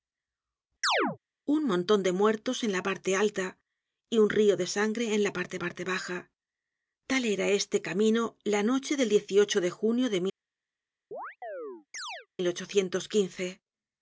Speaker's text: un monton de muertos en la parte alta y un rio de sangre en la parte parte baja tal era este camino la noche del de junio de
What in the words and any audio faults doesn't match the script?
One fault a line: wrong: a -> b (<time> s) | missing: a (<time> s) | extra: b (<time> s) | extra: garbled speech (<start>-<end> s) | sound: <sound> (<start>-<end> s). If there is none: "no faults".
sound: chirp (0.8-1.2 s)
sound: chirp (11.1-12.3 s)